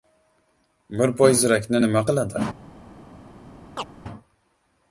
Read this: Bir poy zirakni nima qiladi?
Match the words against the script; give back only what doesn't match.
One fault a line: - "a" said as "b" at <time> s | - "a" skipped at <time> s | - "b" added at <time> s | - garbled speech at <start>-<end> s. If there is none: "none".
none